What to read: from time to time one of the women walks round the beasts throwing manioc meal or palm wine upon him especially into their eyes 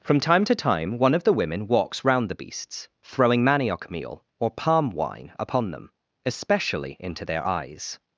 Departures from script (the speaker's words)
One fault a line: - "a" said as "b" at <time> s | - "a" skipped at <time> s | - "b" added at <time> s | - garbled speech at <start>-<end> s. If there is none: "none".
- "him" said as "them" at 5.7 s